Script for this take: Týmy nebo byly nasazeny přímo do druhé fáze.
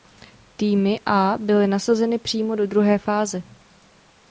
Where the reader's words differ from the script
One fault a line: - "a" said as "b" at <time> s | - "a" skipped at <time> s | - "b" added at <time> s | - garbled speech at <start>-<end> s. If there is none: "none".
- "nebo" said as "a" at 1.1 s